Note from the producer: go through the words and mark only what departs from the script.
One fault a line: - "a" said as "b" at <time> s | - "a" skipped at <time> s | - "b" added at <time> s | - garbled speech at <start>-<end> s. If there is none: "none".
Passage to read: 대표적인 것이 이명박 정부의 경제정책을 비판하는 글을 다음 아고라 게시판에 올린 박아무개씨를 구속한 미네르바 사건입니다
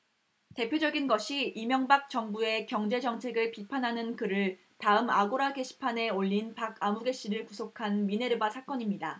none